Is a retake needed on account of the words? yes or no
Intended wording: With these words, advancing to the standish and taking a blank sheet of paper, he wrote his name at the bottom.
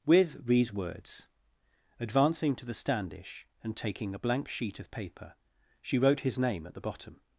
yes